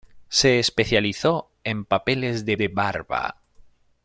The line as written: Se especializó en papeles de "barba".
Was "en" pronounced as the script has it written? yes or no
yes